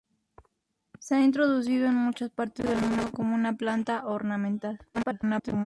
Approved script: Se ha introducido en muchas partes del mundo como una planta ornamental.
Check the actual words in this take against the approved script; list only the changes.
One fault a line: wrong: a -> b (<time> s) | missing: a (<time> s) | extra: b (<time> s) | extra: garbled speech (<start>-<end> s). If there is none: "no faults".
extra: garbled speech (4.9-5.7 s)